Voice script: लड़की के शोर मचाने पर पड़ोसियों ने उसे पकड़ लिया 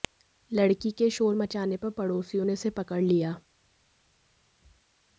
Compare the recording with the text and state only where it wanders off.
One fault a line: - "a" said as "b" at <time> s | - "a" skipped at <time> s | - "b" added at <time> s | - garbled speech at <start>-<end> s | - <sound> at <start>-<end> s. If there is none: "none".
none